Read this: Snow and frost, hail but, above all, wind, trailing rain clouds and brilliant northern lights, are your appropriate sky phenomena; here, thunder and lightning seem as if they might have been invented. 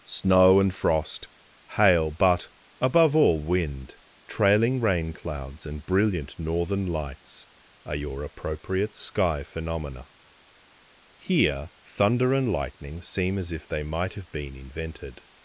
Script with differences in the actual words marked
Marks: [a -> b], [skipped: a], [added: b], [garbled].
Snow and frost, hail but, above all, wind, trailing rain clouds and brilliant northern lights, are your appropriate sky phenomena; here, thunder and lightning seem as if they might have been invented.